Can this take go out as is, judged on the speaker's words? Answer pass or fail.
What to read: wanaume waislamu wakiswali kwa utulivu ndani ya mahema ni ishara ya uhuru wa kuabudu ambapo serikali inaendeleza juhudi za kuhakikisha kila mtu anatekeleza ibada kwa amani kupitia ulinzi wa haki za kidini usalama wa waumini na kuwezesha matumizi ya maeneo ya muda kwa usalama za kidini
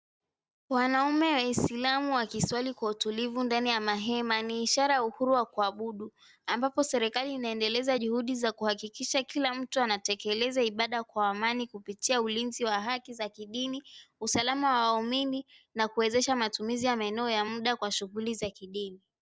fail